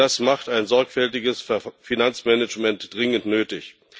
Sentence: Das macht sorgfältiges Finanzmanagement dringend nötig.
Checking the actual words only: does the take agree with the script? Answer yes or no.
no